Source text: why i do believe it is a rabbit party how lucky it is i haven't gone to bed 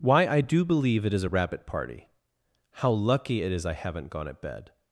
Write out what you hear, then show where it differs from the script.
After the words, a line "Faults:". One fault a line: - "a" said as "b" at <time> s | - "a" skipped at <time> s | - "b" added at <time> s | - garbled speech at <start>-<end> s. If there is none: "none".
why i do believe it is a rabbit party how lucky it is i haven't gone at bed
Faults:
- "to" said as "at" at 4.3 s